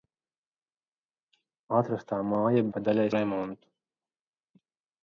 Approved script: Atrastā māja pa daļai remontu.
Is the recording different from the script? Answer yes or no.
no